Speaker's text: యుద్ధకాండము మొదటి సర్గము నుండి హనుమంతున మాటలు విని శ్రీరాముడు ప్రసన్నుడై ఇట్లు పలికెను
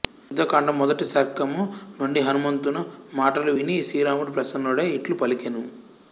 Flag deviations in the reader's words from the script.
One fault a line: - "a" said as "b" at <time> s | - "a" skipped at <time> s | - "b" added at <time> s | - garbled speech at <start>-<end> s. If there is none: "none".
none